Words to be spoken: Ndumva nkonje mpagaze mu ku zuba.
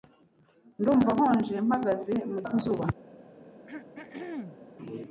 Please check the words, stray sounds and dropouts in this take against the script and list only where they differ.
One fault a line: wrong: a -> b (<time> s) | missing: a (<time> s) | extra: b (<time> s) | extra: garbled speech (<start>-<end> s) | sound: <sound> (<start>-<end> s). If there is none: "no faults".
sound: throat clearing (3.7-4.6 s)